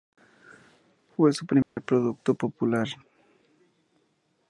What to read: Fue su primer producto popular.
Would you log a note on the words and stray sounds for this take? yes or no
yes